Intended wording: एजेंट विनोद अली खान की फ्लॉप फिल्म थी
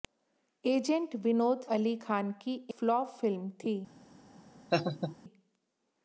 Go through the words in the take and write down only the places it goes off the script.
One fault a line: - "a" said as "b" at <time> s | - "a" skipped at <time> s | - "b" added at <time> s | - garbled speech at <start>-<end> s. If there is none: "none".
none